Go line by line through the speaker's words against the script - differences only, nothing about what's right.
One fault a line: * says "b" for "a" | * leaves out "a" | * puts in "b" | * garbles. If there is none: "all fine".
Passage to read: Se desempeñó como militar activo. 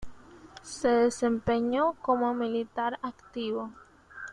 all fine